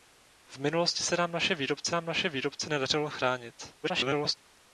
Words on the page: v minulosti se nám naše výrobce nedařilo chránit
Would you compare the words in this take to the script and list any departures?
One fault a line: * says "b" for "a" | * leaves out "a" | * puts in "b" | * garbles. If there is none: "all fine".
* puts in "nám naše výrobce"
* garbles